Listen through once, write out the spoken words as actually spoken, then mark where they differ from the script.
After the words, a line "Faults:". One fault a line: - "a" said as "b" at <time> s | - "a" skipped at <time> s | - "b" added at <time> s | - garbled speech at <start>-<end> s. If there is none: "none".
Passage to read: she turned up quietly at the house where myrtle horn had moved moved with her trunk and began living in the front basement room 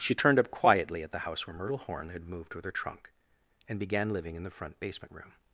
she turned up quietly at the house where myrtle horn had moved with her trunk and began living in the front basement room
Faults:
- "moved" skipped at 2.5 s